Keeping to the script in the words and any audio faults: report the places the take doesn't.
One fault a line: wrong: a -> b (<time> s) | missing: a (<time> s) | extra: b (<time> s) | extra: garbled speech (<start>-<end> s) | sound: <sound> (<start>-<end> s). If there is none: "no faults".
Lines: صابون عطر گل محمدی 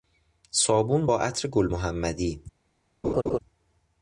extra: با (1.0 s)
sound: laugh (3.0-3.4 s)